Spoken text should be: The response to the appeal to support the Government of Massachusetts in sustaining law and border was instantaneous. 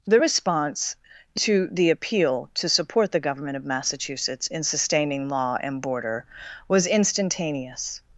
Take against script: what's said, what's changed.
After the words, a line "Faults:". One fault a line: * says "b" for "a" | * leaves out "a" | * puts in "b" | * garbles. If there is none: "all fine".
The response to the appeal to support the Government of Massachusetts in sustaining law and border was instantaneous.
Faults:
all fine